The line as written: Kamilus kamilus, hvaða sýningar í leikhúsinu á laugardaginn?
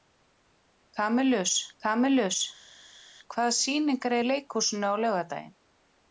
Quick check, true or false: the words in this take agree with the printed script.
true